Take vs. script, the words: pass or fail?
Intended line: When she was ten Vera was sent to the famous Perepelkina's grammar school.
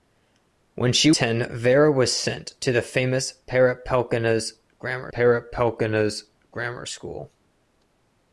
fail